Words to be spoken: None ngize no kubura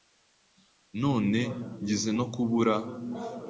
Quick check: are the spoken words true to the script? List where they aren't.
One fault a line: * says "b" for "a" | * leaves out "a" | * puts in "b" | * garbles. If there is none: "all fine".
all fine